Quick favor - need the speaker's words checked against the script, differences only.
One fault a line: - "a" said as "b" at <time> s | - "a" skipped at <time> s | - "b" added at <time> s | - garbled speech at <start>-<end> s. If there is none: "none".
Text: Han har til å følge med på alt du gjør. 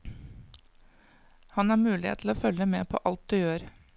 - "mulighet" added at 1.8 s